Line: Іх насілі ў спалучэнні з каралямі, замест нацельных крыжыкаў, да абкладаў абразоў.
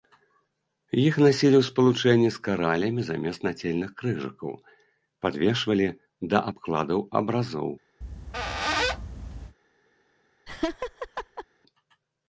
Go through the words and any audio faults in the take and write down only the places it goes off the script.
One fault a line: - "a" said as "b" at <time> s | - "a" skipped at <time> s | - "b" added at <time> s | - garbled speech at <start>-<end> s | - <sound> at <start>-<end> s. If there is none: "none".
- "падвешвалі" added at 5.3 s
- squeak at 8.0-9.6 s
- laugh at 10.5-11.5 s